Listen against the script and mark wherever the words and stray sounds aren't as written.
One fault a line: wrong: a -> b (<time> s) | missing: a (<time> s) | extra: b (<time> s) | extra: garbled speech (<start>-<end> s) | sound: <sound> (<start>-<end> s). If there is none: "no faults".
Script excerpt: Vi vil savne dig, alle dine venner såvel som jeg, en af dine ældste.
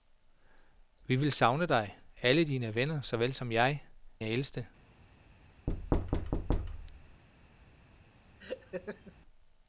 missing: en af dine (3.8 s)
sound: thud (5.7-7.2 s)
sound: laugh (8.4-9.2 s)